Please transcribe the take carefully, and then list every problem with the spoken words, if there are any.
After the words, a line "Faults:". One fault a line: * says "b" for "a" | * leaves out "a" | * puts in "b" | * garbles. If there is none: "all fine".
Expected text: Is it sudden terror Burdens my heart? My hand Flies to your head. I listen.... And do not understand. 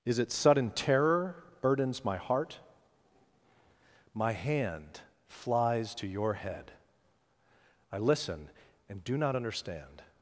Is it sudden terror Burdens my heart? My hand Flies to your head. I listen.... And do not understand.
Faults:
all fine